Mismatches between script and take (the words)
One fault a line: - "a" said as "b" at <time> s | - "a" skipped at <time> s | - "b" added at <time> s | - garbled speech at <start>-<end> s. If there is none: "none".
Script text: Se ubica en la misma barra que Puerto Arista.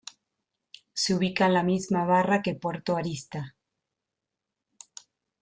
none